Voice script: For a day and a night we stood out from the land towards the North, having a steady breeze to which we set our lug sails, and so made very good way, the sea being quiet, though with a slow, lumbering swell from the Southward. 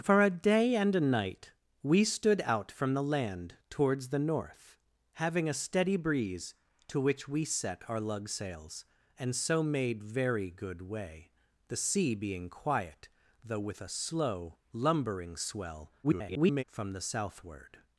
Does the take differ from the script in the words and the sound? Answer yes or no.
yes